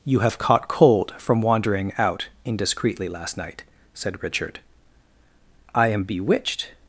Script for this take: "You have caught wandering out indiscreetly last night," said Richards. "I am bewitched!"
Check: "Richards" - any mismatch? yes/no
yes